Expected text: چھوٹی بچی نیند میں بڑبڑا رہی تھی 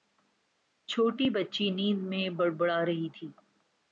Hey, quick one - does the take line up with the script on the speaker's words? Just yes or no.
yes